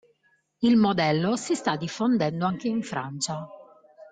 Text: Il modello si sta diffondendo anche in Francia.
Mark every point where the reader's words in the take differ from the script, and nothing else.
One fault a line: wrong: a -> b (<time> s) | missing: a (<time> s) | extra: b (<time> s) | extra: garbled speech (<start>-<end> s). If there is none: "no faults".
no faults